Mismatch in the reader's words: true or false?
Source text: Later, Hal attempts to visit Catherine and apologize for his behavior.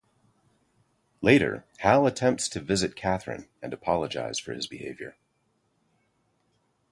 false